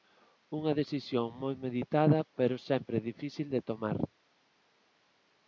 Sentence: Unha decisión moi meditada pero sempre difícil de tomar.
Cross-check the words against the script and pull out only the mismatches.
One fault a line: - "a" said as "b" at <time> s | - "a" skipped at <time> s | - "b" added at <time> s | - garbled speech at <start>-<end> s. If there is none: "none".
none